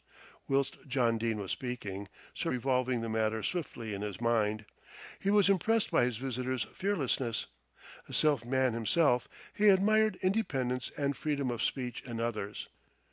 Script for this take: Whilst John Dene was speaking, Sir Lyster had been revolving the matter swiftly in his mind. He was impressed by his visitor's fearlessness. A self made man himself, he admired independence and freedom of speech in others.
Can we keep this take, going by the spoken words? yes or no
no